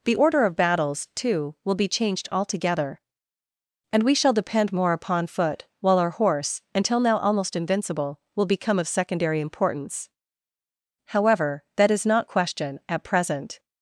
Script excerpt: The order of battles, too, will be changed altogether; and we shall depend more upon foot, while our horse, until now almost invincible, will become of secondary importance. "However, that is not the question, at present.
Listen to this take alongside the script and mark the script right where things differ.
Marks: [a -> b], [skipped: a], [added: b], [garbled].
The order of battles, too, will be changed altogether; and we shall depend more upon foot, while our horse, until now almost invincible, will become of secondary importance. "However, that is not [skipped: the] question, at present.